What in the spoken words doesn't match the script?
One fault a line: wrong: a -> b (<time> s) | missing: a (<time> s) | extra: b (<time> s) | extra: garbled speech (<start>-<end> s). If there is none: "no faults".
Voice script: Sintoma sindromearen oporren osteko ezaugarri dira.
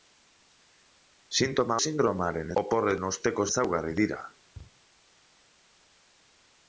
no faults